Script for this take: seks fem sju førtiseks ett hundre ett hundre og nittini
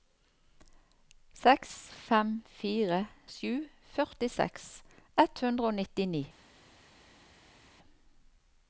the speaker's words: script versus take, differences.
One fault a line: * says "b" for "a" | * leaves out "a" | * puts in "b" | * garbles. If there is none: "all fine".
* puts in "fire"
* leaves out "ett hundre"